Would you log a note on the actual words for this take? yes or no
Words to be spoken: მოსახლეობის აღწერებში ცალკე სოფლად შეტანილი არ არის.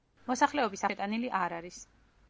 yes